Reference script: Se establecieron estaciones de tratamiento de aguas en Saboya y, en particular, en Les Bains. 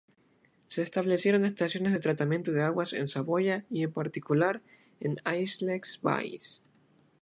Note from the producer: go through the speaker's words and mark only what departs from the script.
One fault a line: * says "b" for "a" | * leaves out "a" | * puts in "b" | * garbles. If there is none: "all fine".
* puts in "Aix"